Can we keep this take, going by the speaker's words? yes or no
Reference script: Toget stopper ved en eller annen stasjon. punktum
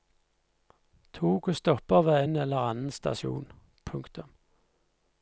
yes